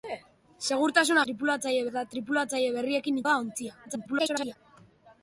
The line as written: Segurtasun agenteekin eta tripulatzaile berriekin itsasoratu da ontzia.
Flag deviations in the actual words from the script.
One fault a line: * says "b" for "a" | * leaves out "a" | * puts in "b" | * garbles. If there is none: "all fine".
* says "tripulatzaile" for "agenteekin"
* leaves out "itsasoratu"
* garbles